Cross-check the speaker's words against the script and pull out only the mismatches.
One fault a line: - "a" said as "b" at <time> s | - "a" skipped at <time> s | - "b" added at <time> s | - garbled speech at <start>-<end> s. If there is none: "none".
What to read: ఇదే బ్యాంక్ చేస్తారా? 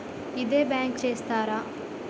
none